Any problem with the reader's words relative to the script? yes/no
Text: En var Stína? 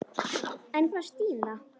no